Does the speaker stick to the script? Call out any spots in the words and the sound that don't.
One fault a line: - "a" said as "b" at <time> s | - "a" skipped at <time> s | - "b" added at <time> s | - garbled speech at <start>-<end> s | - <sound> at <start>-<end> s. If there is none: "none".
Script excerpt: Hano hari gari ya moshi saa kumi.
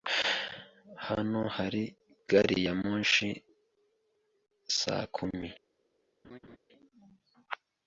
- laugh at 6.2-6.6 s